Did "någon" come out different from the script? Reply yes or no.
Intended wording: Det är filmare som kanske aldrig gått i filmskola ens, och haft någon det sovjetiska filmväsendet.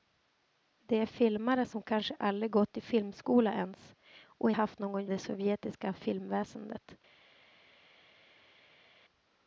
no